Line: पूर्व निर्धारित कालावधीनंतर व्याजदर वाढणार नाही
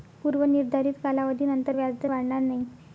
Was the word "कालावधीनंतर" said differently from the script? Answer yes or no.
no